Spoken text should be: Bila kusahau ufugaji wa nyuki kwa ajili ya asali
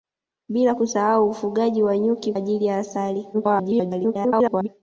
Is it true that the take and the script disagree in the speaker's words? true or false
true